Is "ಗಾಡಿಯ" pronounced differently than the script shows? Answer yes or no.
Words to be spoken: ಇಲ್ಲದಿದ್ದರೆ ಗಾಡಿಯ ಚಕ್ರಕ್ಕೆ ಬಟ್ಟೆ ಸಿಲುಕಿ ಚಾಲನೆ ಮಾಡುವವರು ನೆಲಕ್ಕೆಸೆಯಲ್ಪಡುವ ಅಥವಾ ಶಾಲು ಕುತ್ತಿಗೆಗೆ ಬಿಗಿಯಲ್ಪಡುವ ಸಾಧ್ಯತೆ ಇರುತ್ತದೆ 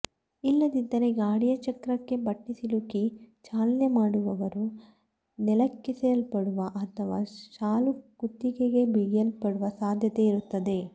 no